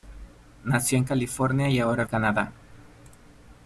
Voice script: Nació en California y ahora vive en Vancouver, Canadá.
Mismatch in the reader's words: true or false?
true